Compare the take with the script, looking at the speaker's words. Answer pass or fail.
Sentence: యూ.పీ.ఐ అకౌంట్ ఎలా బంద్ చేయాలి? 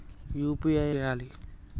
fail